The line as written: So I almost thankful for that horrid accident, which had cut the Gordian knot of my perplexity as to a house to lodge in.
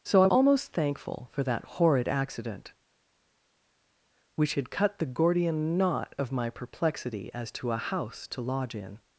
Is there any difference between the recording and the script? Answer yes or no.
no